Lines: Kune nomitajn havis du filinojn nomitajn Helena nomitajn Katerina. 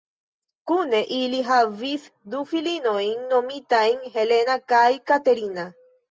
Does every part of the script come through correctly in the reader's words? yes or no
no